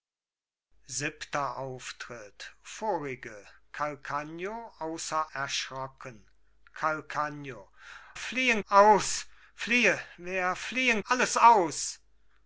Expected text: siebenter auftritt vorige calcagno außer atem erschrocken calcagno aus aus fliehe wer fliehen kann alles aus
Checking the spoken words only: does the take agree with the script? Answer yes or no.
no